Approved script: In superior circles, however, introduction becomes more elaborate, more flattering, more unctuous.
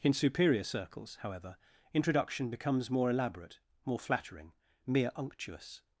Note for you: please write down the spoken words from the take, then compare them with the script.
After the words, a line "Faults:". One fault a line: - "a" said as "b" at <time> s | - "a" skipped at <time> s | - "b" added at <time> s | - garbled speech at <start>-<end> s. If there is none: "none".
In superior circles, however, introduction becomes more elaborate, more flattering, mere unctuous.
Faults:
- "more" said as "mere" at 4.9 s